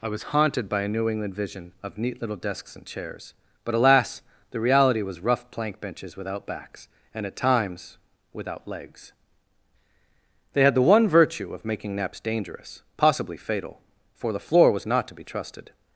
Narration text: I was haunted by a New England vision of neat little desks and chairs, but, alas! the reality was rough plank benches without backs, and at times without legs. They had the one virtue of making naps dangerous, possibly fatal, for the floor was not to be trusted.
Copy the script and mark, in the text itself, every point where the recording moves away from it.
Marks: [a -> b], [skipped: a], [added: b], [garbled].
I was haunted by a New England vision of neat little desks and chairs, but, alas! the reality was rough plank benches without backs, and at times without legs. They had the one virtue of making naps dangerous, possibly fatal, for the floor was not to be trusted.